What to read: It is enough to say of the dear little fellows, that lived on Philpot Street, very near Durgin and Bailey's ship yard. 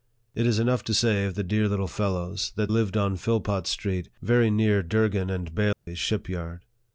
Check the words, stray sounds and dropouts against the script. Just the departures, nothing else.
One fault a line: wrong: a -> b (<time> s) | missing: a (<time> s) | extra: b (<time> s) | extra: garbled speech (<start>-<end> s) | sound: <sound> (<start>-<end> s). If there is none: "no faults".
sound: dropout (5.7-5.9 s)